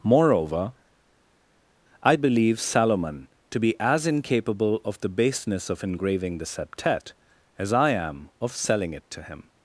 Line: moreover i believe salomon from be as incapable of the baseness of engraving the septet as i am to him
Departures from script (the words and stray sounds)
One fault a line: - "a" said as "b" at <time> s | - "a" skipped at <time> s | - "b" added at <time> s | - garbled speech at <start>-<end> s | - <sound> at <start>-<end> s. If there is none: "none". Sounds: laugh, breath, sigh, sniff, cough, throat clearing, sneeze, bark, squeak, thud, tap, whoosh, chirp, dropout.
- "from" said as "to" at 3.5 s
- "of selling it" added at 8.4 s